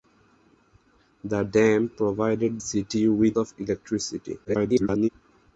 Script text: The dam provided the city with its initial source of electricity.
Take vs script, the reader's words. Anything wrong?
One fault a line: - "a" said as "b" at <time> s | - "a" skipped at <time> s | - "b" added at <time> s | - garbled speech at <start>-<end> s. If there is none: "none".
- "the" skipped at 2.6 s
- "its initial source" skipped at 3.4 s
- garbled speech at 4.4-5.1 s